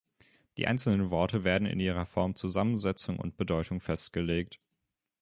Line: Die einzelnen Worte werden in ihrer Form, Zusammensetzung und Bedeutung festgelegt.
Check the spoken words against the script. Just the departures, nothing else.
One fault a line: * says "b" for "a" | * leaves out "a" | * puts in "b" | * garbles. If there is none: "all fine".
all fine